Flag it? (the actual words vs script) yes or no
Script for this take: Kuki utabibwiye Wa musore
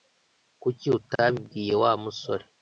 no